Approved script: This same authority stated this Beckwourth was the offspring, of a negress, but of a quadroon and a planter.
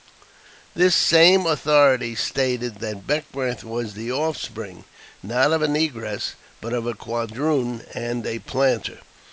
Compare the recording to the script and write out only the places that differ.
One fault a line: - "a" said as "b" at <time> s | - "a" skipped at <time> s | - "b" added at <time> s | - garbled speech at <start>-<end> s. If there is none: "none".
- "this" said as "that" at 2.8 s
- "not" added at 5.2 s